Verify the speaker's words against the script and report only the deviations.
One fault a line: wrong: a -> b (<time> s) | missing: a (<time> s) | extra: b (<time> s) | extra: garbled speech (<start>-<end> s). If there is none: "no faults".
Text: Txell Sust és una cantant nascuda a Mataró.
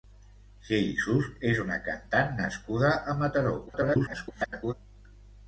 extra: garbled speech (3.7-4.7 s)